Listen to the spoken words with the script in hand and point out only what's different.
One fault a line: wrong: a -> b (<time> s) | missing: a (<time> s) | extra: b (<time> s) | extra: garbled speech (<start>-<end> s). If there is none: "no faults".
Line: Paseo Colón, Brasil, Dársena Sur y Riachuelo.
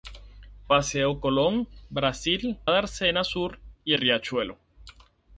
no faults